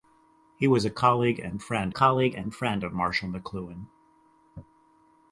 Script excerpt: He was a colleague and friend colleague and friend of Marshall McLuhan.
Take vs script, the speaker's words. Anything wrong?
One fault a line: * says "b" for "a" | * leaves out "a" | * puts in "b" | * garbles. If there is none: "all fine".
all fine